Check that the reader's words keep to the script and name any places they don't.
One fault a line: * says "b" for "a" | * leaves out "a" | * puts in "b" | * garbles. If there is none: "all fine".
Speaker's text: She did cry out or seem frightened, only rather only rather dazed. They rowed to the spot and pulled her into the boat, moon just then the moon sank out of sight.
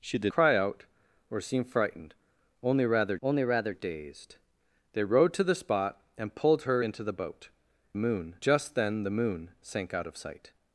all fine